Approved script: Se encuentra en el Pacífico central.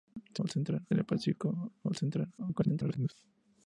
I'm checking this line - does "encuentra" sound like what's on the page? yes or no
no